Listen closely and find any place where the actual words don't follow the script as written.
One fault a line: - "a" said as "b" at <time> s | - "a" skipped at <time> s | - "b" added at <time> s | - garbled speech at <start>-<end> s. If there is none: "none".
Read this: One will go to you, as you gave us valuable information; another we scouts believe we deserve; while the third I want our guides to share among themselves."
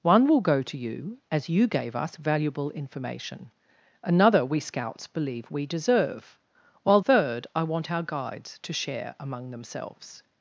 - "the" skipped at 7.0 s